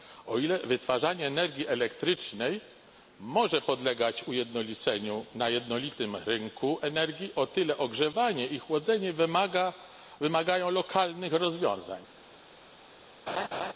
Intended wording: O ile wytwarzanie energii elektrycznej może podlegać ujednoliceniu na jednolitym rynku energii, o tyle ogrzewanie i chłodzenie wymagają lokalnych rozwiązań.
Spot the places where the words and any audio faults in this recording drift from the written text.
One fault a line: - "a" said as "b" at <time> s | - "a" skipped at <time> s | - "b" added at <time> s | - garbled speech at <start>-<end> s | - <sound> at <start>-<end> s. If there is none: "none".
- laugh at 13.3-13.7 s